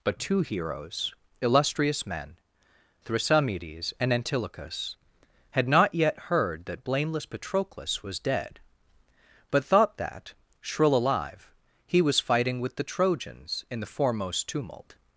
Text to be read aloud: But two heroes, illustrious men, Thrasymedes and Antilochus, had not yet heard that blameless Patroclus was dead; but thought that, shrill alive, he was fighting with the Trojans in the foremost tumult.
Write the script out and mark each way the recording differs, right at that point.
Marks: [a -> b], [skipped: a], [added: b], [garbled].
But two heroes, illustrious men, Thrasymedes and Antilochus, had not yet heard that blameless Patroclus was dead; but thought that, shrill alive, he was fighting with the Trojans in the foremost tumult.